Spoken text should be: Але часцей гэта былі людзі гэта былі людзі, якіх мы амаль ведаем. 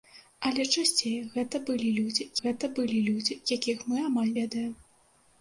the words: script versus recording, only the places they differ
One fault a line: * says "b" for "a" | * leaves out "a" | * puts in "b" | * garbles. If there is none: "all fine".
all fine